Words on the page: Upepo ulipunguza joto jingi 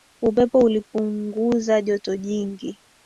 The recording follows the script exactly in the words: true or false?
true